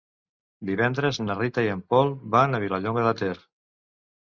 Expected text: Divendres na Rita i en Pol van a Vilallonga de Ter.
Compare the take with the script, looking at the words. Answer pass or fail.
pass